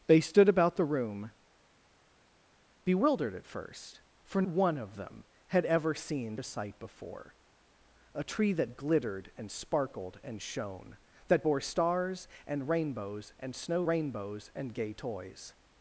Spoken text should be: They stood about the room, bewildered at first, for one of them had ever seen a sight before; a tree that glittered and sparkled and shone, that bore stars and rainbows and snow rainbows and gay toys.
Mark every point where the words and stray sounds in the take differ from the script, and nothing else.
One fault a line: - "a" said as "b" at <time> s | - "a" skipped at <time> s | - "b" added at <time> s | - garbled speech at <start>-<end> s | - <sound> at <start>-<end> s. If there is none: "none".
none